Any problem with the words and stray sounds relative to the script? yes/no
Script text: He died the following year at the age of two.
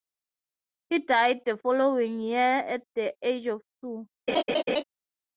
yes